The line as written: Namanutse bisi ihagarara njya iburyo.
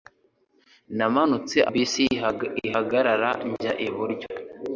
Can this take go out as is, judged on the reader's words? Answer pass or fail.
pass